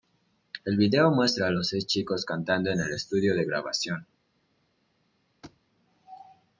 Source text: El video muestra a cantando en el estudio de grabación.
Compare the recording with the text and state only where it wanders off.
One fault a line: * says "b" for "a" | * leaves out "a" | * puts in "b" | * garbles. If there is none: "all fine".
* puts in "los seis chicos"